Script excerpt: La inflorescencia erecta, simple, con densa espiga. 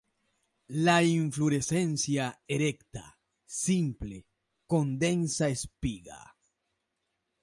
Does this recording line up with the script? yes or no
yes